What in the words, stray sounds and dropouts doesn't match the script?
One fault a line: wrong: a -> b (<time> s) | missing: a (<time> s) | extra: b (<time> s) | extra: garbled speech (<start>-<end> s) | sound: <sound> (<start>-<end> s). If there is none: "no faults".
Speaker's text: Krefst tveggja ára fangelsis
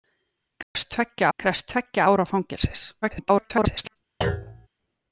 sound: dropout (0.6-0.8 s)
extra: krefst tveggja (1.4 s)
extra: garbled speech (3.0-4.0 s)
sound: thud (4.2-4.7 s)